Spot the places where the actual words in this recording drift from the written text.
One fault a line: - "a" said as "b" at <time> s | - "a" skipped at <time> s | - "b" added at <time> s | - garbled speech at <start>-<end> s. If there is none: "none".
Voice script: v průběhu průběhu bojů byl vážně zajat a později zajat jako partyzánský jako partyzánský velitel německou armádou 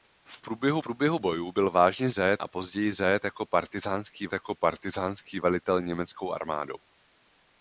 none